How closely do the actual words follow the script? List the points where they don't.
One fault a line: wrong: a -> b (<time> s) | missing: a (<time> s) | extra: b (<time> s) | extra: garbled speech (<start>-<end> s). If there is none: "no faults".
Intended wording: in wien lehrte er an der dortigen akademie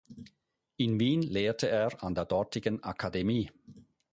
no faults